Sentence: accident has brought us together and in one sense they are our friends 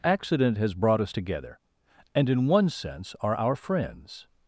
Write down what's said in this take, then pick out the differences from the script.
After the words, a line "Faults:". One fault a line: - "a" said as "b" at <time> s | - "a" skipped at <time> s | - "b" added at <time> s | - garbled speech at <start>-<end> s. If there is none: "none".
accident has brought us together and in one sense are our friends
Faults:
- "they" skipped at 3.1 s